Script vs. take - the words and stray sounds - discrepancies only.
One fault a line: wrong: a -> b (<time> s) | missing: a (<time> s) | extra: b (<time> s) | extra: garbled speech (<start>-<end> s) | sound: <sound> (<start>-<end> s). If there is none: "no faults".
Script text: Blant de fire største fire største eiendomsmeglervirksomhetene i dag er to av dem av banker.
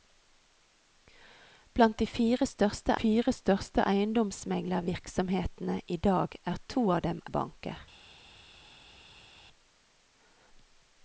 no faults